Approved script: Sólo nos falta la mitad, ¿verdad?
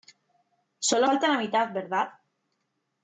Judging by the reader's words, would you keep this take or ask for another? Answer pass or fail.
fail